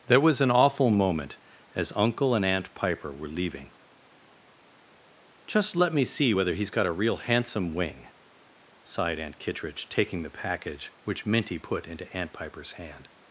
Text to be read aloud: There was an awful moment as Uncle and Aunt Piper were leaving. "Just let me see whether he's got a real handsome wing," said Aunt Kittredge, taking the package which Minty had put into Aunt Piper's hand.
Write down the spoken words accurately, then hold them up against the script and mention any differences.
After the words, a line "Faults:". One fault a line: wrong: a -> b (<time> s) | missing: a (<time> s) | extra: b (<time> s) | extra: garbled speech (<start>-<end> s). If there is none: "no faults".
There was an awful moment as Uncle and Aunt Piper were leaving. "Just let me see whether he's got a real handsome wing," sighed Aunt Kittredge, taking the package which Minty put into Aunt Piper's hand.
Faults:
wrong: said -> sighed (8.8 s)
missing: had (11.6 s)